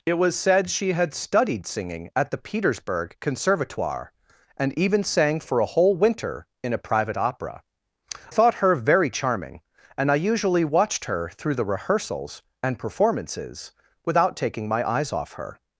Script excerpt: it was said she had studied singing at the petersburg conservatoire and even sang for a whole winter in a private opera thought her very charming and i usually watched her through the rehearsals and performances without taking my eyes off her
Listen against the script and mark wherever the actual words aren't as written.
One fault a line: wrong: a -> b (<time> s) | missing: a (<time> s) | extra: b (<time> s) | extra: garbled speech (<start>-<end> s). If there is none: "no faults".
no faults